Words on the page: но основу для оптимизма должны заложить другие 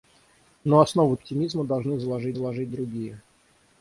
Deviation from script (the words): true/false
true